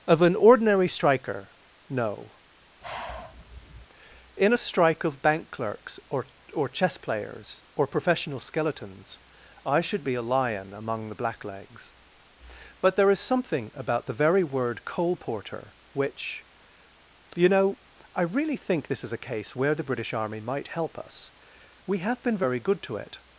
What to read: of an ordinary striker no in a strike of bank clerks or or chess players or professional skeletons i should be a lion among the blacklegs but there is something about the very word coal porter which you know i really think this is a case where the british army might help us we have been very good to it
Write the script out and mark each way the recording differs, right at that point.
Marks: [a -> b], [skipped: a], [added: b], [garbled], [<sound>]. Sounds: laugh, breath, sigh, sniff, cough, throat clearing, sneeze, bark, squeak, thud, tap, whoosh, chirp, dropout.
of an ordinary striker no [sigh] in a strike of bank clerks or or chess players or professional skeletons i should be a lion among the blacklegs but there is something about the very word coal porter which you know i really think this is a case where the british army might help us we have been very good to it